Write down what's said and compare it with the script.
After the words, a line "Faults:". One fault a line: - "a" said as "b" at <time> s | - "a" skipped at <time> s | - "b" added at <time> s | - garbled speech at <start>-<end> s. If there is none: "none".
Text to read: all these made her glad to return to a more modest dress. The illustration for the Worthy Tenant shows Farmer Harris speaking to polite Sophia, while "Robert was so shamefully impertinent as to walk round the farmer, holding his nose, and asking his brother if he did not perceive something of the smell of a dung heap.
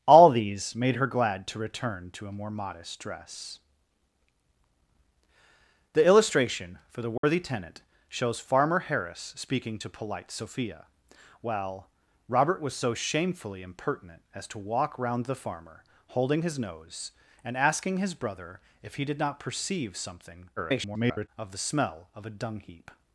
all these made her glad to return to a more modest dress. The illustration for the Worthy Tenant shows Farmer Harris speaking to polite Sophia, while "Robert was so shamefully impertinent as to walk round the farmer, holding his nose, and asking his brother if he did not perceive something [garbled] of the smell of a dung heap.
Faults:
- garbled speech at 20.6-21.3 s